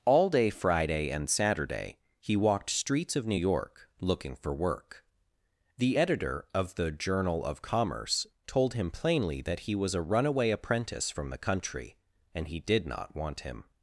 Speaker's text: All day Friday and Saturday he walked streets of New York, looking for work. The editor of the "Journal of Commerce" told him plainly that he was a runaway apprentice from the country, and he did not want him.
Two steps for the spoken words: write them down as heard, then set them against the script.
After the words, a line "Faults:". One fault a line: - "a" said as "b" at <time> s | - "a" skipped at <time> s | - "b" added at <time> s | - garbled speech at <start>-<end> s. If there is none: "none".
All day Friday and Saturday he walked streets of New York, looking for work. The editor of the "Journal of Commerce" told him plainly that he was a runaway apprentice from the country, and he did not want him.
Faults:
none